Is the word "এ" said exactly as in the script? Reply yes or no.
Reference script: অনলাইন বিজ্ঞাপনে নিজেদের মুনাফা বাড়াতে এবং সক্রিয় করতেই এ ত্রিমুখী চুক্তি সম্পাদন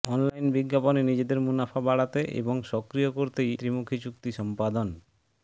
no